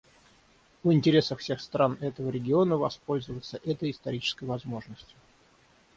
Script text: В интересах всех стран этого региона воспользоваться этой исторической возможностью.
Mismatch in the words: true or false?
false